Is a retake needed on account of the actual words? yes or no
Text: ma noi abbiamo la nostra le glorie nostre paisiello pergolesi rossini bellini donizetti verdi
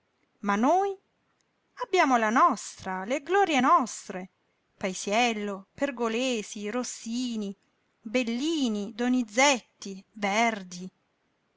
no